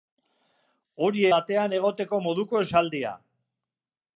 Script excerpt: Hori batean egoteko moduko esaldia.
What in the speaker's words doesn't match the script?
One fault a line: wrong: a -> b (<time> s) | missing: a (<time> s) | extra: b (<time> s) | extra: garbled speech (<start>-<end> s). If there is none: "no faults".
no faults